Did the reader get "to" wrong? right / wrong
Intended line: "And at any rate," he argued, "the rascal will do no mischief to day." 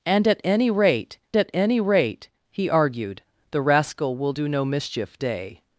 wrong